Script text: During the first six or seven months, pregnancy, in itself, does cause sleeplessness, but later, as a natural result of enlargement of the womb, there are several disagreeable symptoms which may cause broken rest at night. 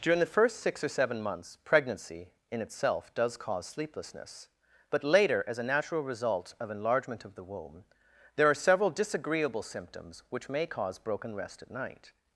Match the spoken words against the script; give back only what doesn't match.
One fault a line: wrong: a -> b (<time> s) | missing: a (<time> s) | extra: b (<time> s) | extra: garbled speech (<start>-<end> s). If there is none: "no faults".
no faults